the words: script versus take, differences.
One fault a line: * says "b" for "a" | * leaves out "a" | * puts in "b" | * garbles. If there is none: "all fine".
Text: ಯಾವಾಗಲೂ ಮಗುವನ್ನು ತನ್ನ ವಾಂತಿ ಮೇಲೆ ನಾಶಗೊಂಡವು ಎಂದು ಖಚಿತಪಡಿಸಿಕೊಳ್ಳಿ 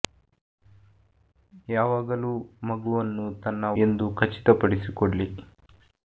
* leaves out "ವಾಂತಿ ಮೇಲೆ ನಾಶಗೊಂಡವು"